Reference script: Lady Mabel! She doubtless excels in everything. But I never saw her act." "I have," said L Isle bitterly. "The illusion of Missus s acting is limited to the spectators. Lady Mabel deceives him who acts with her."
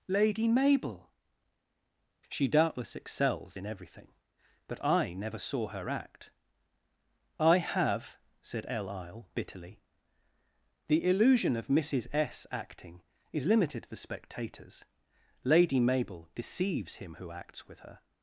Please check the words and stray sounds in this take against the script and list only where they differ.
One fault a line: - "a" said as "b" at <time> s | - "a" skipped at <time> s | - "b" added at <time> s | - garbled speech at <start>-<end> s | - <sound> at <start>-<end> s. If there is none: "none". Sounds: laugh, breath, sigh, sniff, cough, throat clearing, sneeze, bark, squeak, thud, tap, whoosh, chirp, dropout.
none